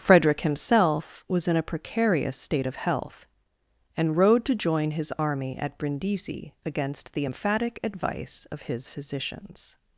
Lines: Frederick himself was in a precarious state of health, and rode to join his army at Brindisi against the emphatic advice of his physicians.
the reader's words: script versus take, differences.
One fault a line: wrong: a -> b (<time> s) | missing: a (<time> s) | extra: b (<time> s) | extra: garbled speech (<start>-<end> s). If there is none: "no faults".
no faults